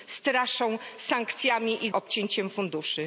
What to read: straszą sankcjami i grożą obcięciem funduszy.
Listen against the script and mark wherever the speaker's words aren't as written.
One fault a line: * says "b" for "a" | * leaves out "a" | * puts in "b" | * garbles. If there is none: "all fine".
* leaves out "grożą"